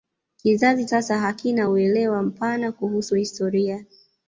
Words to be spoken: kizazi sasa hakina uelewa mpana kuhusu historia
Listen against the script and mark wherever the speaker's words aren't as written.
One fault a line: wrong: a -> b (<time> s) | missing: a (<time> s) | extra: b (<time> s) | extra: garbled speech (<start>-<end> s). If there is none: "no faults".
no faults